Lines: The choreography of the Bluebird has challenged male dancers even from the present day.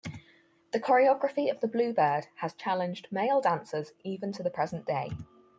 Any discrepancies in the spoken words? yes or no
yes